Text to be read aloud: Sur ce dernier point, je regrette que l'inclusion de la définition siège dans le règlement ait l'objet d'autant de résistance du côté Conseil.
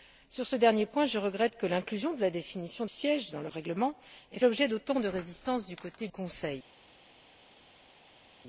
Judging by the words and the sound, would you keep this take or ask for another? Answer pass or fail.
pass